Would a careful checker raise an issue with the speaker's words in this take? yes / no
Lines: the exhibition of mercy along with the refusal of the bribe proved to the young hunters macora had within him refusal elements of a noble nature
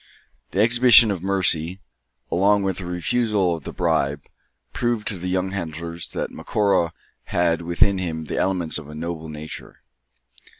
yes